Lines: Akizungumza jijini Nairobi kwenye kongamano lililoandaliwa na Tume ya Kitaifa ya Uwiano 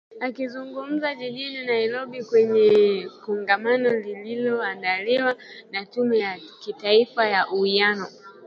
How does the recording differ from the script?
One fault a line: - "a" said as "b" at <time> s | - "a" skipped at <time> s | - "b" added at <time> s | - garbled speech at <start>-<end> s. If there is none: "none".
none